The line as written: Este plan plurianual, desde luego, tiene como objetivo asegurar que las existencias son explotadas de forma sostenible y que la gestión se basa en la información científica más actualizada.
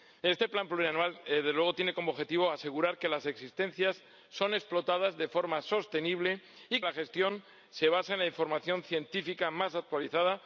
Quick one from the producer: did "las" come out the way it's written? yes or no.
yes